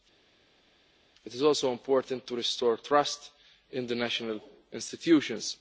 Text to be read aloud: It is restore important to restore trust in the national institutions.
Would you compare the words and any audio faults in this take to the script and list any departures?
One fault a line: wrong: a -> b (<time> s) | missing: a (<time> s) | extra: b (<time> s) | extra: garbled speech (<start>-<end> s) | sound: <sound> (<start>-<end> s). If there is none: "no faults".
wrong: restore -> also (1.4 s)